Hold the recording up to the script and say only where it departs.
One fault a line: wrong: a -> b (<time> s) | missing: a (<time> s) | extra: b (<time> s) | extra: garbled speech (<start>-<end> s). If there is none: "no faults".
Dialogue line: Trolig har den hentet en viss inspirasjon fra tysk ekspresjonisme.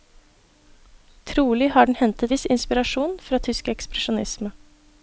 missing: en (2.3 s)